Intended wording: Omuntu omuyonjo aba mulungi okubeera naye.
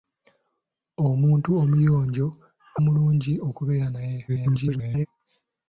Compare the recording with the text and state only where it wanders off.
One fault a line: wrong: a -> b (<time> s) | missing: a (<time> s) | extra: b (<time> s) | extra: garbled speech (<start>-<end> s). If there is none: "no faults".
missing: aba (2.3 s)
extra: garbled speech (4.3-5.1 s)